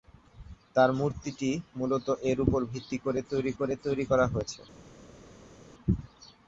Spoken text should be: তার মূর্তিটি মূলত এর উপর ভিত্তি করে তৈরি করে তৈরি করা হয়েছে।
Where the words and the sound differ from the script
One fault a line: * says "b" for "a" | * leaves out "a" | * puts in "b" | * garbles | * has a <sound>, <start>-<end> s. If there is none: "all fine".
all fine